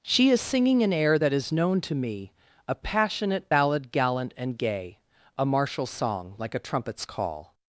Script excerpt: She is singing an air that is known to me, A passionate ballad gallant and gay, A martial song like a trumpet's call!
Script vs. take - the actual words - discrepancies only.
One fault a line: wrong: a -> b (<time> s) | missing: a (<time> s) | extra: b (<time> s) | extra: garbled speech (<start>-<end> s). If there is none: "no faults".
no faults